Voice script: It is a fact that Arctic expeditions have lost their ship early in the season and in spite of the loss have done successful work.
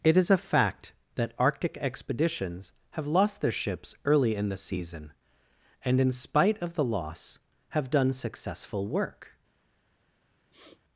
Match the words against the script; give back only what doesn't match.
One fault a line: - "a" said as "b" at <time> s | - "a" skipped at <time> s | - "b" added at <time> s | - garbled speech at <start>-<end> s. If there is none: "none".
- "ship" said as "ships" at 3.5 s